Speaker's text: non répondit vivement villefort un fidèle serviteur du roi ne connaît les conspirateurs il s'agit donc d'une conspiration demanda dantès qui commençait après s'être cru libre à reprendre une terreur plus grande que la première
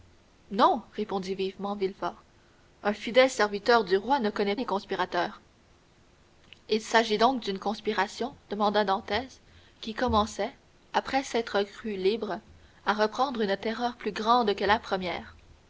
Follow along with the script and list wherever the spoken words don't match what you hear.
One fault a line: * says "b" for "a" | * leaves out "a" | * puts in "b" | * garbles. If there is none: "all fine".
all fine